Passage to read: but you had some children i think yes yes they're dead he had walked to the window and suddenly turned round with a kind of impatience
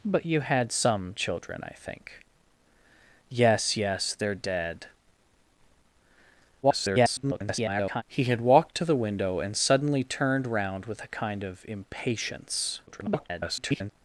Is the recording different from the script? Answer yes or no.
yes